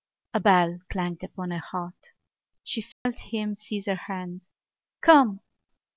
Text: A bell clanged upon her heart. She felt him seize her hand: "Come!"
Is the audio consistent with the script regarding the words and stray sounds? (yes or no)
no